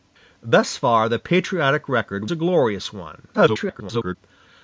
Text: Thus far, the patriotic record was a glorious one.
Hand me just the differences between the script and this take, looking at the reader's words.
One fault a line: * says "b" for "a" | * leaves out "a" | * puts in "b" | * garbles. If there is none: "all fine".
* leaves out "was"
* garbles